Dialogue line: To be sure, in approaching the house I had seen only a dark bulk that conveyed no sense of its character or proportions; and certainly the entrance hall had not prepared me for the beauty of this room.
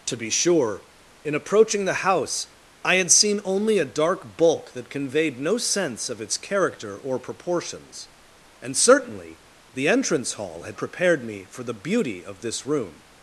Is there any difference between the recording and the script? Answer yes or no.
yes